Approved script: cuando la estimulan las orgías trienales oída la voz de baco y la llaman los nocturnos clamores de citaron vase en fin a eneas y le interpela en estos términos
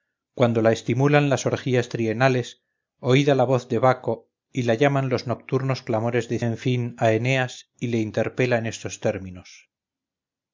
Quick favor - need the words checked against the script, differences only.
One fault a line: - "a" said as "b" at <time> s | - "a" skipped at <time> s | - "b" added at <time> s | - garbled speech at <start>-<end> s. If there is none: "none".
- "citaron vase" skipped at 6.4 s